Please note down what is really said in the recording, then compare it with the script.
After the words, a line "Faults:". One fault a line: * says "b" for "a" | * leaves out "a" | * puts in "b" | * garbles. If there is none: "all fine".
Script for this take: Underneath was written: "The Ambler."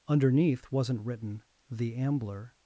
Underneath wasn't written: "The Ambler."
Faults:
* says "wasn't" for "was"